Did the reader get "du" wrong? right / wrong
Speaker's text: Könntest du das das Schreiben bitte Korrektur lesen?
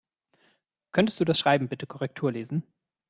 right